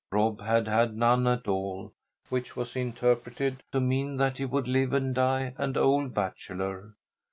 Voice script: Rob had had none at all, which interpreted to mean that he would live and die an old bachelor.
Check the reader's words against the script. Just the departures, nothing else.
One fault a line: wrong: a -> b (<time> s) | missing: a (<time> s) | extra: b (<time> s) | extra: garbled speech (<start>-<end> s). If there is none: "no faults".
extra: was (2.6 s)